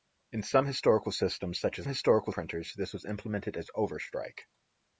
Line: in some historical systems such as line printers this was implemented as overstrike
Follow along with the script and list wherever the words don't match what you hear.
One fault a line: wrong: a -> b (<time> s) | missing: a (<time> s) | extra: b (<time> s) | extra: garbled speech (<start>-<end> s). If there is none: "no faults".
wrong: line -> historical (1.9 s)